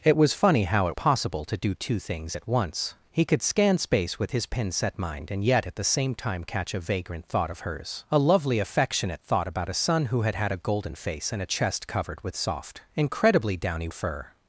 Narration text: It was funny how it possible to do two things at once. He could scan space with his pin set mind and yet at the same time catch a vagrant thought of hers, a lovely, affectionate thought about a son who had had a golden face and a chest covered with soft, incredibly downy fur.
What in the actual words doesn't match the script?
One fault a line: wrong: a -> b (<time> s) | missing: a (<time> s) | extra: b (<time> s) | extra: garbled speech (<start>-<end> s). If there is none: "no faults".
no faults